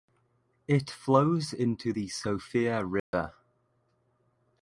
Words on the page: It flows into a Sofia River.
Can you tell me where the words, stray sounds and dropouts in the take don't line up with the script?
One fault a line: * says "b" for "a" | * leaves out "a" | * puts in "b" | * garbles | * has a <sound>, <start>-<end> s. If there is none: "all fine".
* says "the" for "a"
* has a dropout, 3.0-3.1 s